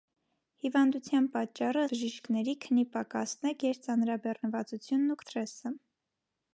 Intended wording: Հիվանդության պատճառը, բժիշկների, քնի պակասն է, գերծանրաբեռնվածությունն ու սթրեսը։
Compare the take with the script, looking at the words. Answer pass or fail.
pass